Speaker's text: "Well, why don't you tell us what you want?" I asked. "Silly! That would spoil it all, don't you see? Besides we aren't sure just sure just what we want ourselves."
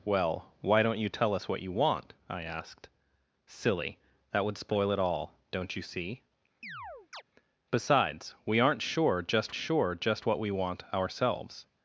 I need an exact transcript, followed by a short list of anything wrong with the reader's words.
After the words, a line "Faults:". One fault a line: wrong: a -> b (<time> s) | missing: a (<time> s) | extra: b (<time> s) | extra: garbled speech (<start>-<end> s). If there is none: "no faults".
"Well, why don't you tell us what you want?" I asked. "Silly! That would spoil it all, don't you see? Besides we aren't sure just sure just what we want ourselves."
Faults:
no faults